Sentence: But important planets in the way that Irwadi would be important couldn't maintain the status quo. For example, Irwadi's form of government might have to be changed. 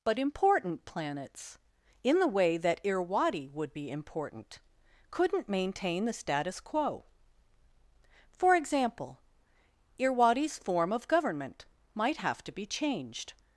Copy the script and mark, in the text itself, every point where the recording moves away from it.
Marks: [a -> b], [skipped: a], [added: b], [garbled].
But important planets in the way that Irwadi would be important couldn't maintain the status quo. For example, Irwadi's form of government might have to be changed.